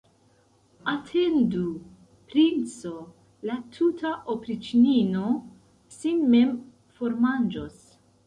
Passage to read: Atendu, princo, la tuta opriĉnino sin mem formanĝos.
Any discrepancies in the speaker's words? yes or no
no